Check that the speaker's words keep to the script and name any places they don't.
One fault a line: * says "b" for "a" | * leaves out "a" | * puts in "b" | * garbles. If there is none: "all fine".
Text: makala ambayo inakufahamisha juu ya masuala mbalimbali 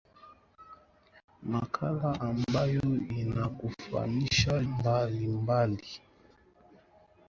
* leaves out "juu ya masuala"